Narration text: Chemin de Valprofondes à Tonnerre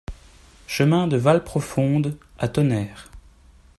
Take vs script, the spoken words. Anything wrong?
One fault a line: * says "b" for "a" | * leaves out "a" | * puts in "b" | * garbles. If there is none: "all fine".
all fine